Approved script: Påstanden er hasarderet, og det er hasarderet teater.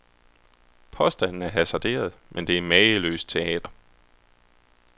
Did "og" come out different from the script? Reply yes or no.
yes